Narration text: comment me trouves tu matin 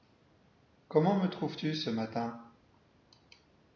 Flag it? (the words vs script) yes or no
yes